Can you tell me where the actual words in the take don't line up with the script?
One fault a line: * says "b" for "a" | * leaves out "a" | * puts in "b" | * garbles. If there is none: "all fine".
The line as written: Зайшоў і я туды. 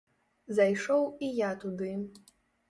all fine